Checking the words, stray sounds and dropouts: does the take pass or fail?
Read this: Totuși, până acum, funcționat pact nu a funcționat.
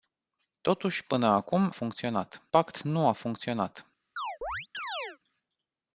fail